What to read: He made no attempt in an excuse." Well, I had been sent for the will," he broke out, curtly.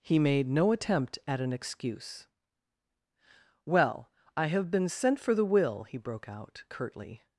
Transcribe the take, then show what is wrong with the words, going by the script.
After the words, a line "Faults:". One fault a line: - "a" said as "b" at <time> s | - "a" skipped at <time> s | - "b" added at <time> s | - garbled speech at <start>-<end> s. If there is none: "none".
He made no attempt at an excuse." Well, I have been sent for the will," he broke out, curtly.
Faults:
- "in" said as "at" at 1.3 s
- "had" said as "have" at 4.5 s